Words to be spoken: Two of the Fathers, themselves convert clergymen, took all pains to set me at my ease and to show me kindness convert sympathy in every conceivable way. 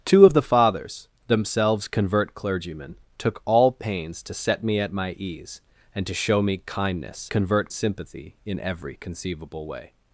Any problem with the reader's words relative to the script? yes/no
no